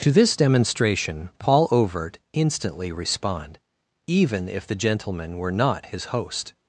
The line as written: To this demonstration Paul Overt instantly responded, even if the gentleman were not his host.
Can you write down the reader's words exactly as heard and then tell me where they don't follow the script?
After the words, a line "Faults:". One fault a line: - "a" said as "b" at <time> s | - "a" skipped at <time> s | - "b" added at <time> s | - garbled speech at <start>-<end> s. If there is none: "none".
To this demonstration Paul Overt instantly respond, even if the gentleman were not his host.
Faults:
- "responded" said as "respond" at 2.9 s